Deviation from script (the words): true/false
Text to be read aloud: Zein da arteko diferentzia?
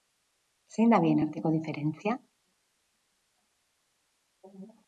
true